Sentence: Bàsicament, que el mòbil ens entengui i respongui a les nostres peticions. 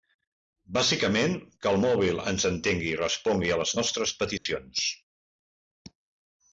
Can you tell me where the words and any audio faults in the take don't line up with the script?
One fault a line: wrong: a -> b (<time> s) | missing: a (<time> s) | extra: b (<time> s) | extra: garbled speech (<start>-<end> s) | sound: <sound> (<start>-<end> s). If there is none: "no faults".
sound: dropout (4.4-4.5 s)